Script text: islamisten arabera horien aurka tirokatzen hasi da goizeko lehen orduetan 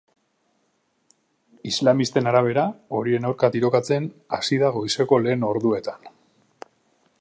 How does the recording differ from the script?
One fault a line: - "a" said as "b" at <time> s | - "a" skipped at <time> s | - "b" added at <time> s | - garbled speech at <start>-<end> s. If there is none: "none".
none